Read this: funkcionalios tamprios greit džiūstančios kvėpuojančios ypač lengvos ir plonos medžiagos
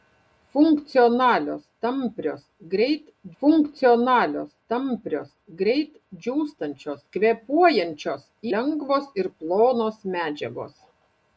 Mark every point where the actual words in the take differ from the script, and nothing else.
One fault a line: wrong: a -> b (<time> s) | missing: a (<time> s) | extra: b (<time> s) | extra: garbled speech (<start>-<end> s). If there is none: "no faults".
extra: funkcionalios tamprios greit (3.4 s)
missing: ypač (8.2 s)